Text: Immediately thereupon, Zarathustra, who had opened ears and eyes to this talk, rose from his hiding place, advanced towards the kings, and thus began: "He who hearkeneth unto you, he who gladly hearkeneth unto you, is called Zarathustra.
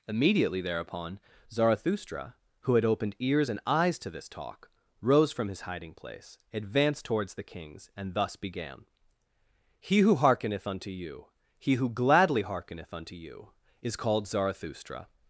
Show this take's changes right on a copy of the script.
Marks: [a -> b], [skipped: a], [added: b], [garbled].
Immediately thereupon, Zarathustra, who had opened ears and eyes to this talk, rose from his hiding place, advanced towards the kings, and thus began: "He who hearkeneth unto you, he who gladly hearkeneth unto you, is called Zarathustra.